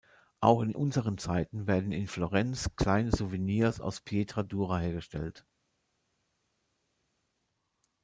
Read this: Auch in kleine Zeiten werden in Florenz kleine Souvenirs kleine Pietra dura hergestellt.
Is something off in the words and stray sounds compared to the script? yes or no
yes